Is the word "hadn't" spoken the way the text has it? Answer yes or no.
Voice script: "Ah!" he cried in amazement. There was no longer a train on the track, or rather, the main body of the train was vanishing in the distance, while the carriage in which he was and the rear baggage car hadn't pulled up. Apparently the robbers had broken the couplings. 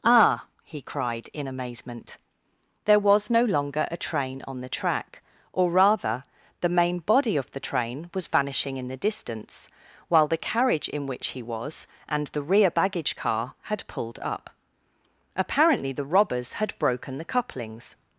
no